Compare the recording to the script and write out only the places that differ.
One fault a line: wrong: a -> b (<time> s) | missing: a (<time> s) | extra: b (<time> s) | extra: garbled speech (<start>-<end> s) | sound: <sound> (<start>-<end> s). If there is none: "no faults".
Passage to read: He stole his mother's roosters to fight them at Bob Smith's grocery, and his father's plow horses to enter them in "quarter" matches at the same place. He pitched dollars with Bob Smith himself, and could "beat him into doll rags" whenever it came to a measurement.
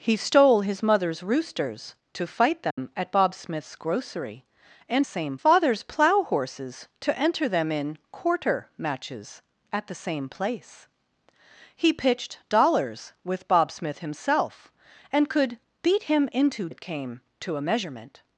sound: dropout (2.7-2.8 s)
wrong: his -> same (5.0 s)
missing: doll rags whenever (16.7 s)